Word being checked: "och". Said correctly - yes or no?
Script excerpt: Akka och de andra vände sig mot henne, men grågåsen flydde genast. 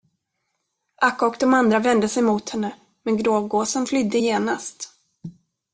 yes